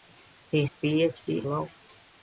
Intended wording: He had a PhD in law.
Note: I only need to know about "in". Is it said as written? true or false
false